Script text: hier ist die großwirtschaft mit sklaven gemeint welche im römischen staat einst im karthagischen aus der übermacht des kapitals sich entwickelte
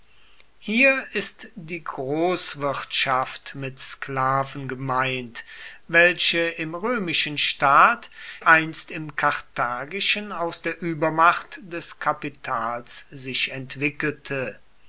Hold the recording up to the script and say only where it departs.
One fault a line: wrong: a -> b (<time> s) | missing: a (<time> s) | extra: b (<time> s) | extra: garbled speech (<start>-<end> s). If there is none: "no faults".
no faults